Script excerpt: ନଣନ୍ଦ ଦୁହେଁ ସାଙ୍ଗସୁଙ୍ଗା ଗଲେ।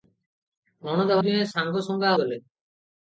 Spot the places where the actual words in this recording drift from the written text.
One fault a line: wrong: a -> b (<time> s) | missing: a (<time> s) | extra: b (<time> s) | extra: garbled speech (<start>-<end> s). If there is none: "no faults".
no faults